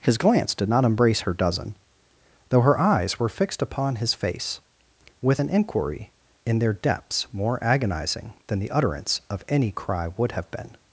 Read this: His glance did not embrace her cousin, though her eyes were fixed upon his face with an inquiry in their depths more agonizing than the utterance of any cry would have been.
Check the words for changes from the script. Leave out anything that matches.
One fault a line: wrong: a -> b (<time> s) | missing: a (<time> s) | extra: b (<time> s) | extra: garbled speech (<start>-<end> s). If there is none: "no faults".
wrong: cousin -> dozen (1.3 s)